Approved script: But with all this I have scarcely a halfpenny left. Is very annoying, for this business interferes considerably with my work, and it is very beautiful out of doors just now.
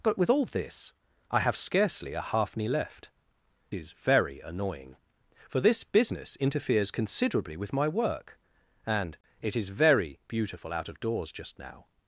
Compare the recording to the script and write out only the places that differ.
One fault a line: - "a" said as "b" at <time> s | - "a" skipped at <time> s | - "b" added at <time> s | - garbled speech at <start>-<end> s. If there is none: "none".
none